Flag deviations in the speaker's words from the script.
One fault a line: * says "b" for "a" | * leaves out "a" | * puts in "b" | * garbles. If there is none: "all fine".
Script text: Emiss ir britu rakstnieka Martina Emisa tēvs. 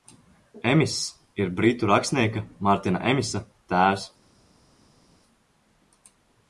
all fine